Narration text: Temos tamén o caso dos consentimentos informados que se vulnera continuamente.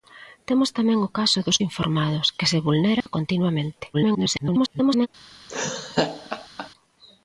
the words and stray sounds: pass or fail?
fail